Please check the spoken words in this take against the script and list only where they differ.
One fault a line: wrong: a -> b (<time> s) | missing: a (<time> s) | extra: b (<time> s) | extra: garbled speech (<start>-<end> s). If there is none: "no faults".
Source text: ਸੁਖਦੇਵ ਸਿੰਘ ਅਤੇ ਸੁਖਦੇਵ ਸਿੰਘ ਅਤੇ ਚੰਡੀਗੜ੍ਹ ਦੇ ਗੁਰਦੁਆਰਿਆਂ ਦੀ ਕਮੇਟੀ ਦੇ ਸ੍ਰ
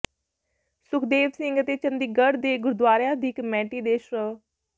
missing: ਸੁਖਦੇਵ ਸਿੰਘ ਅਤੇ (1.8 s)